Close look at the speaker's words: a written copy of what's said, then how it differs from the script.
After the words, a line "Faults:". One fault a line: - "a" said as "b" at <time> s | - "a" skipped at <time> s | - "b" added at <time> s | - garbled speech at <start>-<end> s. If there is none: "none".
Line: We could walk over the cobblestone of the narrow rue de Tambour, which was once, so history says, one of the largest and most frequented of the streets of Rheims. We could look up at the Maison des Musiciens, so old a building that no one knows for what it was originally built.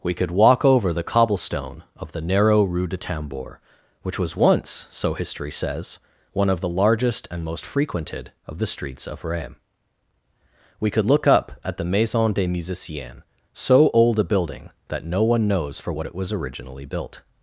We could walk over the cobblestone of the narrow rue de Tambour, which was once, so history says, one of the largest and most frequented of the streets of Rheims. We could look up at the Maison des Musiciens, so old a building that no one knows for what it was originally built.
Faults:
none